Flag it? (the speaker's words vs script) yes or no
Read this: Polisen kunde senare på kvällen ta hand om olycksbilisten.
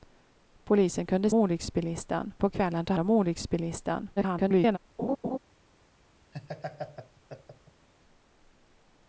yes